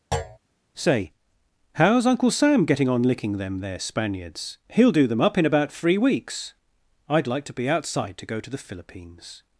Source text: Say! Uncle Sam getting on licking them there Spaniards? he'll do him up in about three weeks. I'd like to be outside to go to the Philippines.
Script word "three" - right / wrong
right